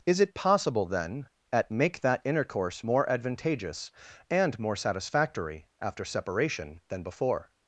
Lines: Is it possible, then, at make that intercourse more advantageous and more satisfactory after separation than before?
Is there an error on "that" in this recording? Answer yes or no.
no